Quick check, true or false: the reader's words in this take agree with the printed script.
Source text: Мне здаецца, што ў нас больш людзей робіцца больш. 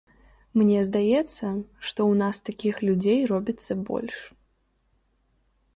false